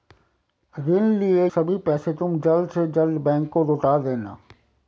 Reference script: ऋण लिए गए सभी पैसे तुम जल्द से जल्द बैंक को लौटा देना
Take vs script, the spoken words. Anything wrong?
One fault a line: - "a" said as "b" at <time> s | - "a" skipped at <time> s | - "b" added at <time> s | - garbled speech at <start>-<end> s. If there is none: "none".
- "गए" skipped at 1.5 s